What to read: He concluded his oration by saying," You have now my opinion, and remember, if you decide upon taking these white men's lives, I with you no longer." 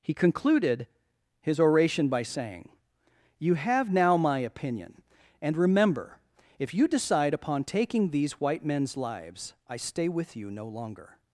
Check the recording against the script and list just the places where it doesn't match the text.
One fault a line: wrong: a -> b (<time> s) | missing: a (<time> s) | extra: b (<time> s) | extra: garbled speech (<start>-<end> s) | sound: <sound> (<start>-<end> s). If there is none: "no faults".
extra: stay (9.8 s)